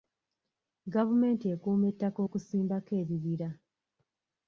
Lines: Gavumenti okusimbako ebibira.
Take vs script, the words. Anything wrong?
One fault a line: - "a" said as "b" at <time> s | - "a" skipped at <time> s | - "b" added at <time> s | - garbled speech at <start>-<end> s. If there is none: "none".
- "ekuuma ettaka" added at 1.5 s